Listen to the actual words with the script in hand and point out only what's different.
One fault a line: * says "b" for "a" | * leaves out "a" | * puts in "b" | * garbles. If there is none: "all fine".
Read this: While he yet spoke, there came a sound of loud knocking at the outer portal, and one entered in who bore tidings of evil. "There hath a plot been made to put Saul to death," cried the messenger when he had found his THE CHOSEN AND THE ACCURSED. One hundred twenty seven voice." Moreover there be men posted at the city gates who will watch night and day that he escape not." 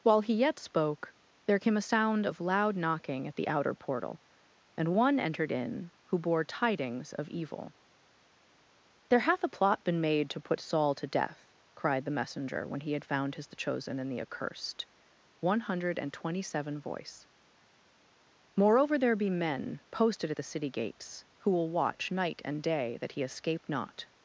* puts in "and"